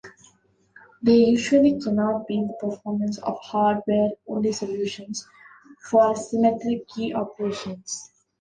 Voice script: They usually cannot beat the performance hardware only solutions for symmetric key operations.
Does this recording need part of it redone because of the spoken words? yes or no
yes